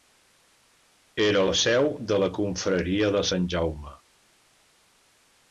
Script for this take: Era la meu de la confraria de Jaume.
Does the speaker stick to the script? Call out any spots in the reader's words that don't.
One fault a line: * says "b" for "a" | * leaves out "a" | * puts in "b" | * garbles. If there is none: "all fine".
* says "seu" for "meu"
* puts in "Sant"